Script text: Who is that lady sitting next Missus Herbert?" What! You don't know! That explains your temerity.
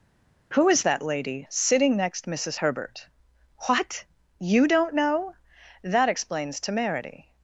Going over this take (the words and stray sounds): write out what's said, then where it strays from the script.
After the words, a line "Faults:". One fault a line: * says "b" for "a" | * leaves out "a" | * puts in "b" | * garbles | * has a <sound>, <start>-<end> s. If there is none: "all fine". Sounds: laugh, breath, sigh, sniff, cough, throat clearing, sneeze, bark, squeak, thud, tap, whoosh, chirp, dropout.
Who is that lady sitting next Missus Herbert?" What! You don't know! That explains temerity.
Faults:
* leaves out "your"